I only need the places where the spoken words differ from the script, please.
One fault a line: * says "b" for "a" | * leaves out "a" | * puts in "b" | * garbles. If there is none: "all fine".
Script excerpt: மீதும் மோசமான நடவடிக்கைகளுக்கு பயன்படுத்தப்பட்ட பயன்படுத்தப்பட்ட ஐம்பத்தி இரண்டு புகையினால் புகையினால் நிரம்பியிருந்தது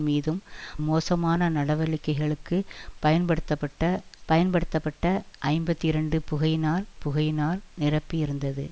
all fine